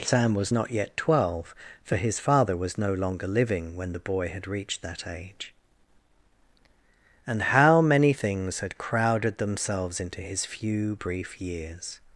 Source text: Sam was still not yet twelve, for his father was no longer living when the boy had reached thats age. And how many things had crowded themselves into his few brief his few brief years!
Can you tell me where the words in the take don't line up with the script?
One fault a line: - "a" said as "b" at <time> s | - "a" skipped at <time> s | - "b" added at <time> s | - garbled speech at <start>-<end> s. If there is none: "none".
- "still" skipped at 0.5 s
- "thats" said as "that" at 4.8 s
- "his few brief" skipped at 11.4 s